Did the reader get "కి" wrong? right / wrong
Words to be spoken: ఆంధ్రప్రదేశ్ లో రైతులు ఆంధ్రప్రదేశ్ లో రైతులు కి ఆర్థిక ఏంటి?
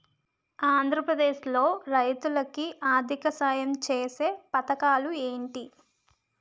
wrong